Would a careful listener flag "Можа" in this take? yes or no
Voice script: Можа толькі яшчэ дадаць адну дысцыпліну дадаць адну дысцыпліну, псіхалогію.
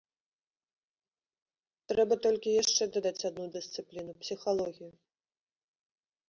yes